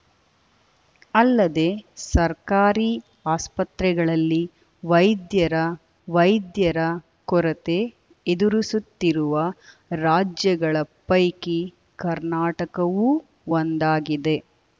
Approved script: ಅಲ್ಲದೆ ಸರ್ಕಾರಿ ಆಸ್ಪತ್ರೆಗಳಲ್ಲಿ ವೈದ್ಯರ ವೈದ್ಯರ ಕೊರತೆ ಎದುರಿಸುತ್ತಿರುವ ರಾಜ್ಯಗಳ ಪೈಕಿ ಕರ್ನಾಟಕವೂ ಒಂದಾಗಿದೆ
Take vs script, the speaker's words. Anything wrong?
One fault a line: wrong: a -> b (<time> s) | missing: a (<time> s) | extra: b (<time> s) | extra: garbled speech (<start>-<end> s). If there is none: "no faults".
no faults